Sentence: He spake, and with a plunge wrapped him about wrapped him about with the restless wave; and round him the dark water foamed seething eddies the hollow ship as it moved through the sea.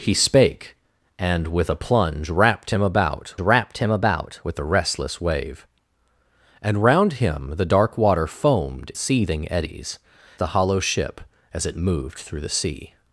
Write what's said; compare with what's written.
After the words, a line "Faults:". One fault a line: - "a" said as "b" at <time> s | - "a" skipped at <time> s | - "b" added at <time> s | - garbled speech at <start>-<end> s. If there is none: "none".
He spake, and with a plunge wrapped him about wrapped him about with the restless wave; and round him the dark water foamed seething eddies the hollow ship as it moved through the sea.
Faults:
none